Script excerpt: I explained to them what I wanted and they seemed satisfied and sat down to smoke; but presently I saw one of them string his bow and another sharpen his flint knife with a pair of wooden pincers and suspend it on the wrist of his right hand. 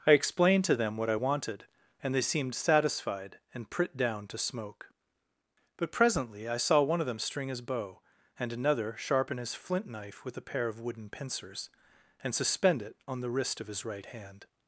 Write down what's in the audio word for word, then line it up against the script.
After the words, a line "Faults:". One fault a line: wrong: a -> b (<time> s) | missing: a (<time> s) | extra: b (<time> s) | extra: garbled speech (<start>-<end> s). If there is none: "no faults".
I explained to them what I wanted and they seemed satisfied and prit down to smoke; but presently I saw one of them string his bow and another sharpen his flint knife with a pair of wooden pincers and suspend it on the wrist of his right hand.
Faults:
wrong: sat -> prit (3.7 s)